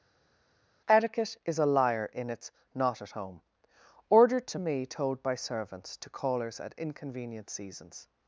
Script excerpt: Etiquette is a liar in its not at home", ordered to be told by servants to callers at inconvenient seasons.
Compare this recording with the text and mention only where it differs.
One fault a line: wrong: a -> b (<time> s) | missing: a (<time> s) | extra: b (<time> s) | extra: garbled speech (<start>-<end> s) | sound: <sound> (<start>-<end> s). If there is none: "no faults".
wrong: be -> me (4.6 s)